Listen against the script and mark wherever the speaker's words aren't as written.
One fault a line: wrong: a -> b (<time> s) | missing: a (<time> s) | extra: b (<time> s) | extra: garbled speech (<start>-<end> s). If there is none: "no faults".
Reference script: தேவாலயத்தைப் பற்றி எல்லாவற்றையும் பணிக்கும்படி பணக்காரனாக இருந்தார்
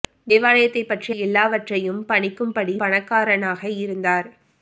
no faults